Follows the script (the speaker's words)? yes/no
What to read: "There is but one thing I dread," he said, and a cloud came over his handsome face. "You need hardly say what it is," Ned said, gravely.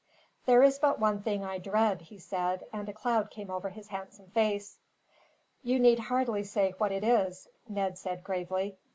yes